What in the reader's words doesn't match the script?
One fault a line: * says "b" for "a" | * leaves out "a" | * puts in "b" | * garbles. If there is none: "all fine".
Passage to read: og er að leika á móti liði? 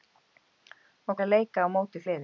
all fine